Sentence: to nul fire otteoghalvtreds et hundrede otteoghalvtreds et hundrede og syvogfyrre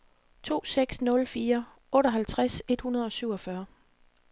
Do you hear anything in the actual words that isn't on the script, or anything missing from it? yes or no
yes